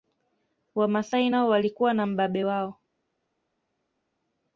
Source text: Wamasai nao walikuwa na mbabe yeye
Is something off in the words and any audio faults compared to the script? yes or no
yes